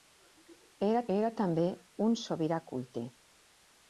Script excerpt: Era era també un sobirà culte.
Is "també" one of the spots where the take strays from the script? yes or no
no